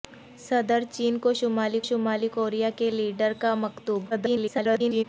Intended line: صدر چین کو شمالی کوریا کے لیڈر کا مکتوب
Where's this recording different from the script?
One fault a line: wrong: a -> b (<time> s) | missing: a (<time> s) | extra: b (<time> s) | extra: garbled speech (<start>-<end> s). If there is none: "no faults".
extra: شمالی (1.8 s)
extra: garbled speech (4.1-5.0 s)